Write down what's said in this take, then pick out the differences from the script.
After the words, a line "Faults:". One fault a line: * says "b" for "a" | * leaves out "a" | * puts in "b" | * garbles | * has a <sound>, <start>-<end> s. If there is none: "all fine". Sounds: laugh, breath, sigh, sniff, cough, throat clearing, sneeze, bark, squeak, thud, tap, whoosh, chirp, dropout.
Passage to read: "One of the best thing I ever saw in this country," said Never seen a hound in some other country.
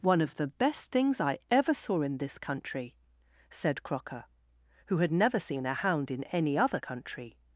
"One of the best things I ever saw in this country," said Crocker, who had never seen a hound in any other country.
Faults:
* says "things" for "thing"
* puts in "Crocker who had"
* says "any" for "some"